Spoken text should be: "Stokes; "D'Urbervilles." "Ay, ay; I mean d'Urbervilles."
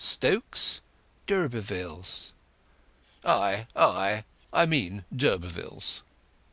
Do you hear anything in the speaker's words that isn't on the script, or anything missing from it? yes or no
no